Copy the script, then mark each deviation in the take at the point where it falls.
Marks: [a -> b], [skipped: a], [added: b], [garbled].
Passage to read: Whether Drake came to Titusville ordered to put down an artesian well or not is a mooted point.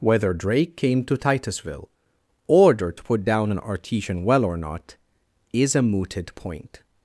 Whether Drake came to Titusville ordered to put down an artesian well or not is a mooted point.